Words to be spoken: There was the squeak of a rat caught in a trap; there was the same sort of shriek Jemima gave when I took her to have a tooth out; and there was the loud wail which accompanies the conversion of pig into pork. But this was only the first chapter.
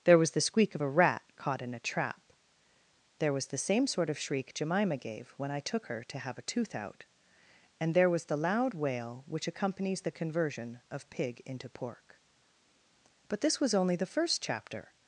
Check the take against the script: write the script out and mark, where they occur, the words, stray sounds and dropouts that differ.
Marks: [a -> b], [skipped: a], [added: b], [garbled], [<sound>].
There was the squeak of a rat caught in a trap; there was the same sort of shriek Jemima gave when I took her to have a tooth out; and there was the loud wail which accompanies the conversion of pig into pork. But this was only the first chapter.